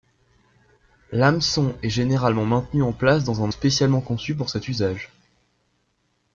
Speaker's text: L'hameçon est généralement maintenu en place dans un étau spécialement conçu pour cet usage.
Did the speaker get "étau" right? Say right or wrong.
wrong